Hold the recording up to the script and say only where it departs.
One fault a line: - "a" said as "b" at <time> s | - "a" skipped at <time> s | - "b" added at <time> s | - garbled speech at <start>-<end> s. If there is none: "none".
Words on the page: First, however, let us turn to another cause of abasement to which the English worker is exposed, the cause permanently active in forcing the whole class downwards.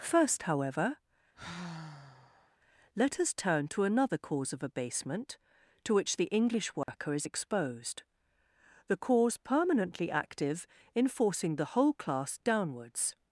none